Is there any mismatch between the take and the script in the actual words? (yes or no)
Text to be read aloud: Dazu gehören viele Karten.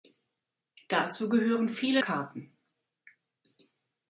no